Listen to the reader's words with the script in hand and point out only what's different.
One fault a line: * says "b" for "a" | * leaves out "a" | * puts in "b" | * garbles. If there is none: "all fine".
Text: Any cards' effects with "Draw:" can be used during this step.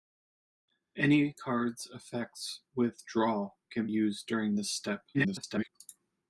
* leaves out "be"
* garbles